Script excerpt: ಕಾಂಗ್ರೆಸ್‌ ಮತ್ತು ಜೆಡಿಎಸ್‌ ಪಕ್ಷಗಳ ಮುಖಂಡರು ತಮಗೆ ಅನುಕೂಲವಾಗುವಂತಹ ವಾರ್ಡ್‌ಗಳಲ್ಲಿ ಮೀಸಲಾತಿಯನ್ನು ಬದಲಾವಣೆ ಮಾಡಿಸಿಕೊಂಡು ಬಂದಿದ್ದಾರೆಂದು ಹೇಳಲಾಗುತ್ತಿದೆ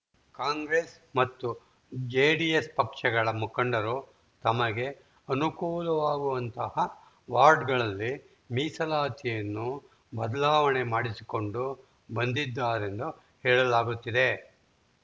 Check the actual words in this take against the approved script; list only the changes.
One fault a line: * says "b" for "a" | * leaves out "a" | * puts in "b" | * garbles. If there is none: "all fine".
all fine